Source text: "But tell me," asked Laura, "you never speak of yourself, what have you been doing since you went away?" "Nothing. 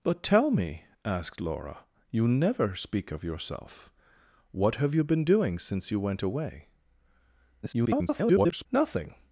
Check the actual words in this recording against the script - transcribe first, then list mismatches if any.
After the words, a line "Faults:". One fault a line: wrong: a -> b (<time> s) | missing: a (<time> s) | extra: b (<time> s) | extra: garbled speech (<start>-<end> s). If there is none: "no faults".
"But tell me," asked Laura, "you never speak of yourself, what have you been doing since you went away?" [garbled] "Nothing.
Faults:
extra: garbled speech (7.6-8.7 s)